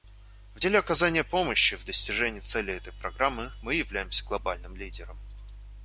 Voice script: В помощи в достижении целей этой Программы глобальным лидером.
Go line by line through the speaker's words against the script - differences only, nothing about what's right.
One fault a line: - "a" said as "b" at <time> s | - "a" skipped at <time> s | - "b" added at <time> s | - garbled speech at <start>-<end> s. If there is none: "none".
- "деле оказания" added at 0.6 s
- "мы являемся" added at 3.6 s